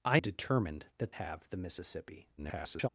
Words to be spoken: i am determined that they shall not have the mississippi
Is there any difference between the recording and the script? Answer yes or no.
yes